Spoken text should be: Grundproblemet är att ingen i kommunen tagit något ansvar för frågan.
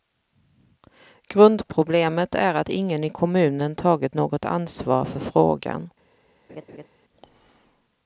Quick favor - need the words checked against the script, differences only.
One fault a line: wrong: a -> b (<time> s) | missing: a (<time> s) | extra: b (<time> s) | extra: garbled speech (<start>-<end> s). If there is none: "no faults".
no faults